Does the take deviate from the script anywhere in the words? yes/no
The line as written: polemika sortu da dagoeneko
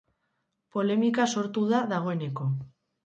no